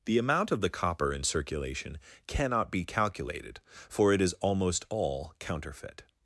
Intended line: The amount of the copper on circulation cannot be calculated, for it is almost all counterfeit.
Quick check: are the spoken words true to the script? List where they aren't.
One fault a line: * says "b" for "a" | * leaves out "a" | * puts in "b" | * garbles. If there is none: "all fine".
* says "in" for "on"